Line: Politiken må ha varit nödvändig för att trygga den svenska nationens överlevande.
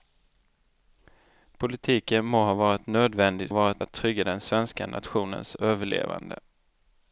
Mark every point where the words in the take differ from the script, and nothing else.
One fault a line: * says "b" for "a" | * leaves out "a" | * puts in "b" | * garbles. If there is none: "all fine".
* says "varit" for "för"